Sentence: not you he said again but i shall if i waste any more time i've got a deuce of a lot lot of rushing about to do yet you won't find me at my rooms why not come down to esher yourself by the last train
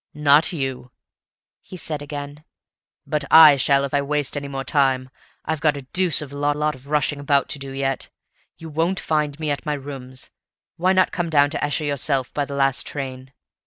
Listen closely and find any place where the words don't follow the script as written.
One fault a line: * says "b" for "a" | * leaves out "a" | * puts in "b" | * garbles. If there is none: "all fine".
all fine